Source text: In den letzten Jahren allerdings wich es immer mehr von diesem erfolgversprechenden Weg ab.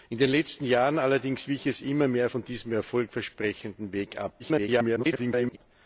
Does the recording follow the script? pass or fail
fail